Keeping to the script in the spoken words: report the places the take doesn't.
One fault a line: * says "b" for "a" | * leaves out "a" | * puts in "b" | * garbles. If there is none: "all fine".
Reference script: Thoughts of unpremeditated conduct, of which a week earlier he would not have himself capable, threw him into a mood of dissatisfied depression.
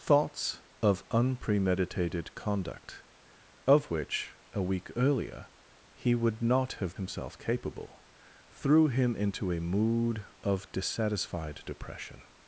all fine